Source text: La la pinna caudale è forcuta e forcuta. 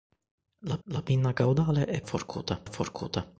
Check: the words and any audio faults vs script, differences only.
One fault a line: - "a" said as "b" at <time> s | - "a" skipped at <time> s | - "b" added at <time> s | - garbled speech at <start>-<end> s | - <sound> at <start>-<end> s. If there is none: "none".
none